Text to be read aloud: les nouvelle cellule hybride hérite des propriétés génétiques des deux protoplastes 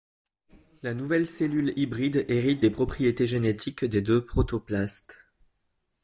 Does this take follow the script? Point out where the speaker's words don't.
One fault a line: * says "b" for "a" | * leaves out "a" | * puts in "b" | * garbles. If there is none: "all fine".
* says "la" for "les"